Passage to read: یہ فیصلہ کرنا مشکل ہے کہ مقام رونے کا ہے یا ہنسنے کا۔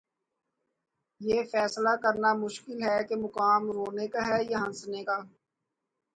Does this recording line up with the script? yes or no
yes